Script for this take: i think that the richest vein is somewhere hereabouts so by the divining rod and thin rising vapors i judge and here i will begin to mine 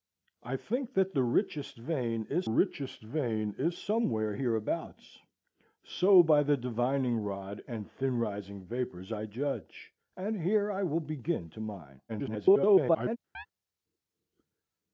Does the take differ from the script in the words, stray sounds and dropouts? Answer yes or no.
yes